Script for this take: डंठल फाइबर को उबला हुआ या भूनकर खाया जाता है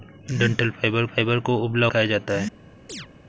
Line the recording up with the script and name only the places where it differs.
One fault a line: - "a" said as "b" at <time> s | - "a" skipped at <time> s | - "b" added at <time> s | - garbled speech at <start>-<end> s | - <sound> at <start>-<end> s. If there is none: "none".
- "फाइबर" added at 1.1 s
- "हुआ या भूनकर" skipped at 1.9 s
- chirp at 2.9-3.1 s